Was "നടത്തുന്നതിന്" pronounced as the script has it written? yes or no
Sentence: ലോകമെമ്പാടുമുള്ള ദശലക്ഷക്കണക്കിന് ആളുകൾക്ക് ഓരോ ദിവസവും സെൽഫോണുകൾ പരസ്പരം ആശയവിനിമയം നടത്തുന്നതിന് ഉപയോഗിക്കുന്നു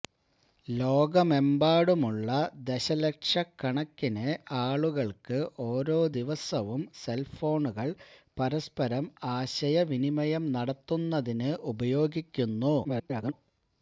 yes